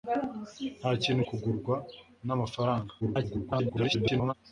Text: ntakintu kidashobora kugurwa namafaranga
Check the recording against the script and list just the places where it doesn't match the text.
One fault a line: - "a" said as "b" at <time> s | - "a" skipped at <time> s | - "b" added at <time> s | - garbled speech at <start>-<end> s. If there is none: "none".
- "kidashobora" skipped at 1.2 s
- garbled speech at 3.0-4.3 s